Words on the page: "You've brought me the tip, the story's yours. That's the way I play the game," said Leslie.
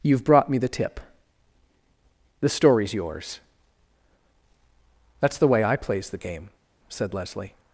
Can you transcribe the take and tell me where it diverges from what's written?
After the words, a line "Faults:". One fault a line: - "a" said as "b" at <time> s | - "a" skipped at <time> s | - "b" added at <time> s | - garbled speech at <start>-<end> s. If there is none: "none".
"You've brought me the tip, the story's yours. That's the way I plays the game," said Leslie.
Faults:
- "play" said as "plays" at 5.8 s